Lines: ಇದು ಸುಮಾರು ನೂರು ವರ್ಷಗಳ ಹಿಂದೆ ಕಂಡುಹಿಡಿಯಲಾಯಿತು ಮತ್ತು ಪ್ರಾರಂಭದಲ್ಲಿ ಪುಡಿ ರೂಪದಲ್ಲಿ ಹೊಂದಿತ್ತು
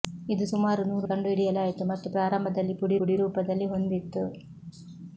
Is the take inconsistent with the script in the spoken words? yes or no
yes